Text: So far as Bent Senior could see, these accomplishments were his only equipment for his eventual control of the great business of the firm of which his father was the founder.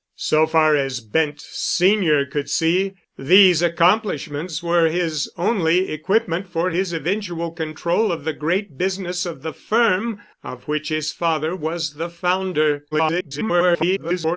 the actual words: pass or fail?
fail